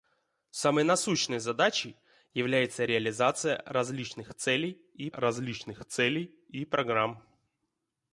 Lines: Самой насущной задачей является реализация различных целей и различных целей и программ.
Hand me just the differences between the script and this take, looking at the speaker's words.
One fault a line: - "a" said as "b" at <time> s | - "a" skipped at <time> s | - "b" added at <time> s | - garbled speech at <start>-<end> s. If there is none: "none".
none